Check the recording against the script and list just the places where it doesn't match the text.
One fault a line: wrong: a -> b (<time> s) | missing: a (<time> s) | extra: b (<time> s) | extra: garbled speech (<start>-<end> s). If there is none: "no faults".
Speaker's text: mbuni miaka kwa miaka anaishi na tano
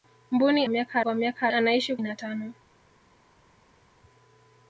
no faults